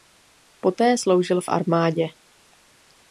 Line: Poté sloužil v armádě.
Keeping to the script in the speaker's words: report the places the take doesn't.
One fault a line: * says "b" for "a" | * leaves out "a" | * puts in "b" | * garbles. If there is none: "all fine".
all fine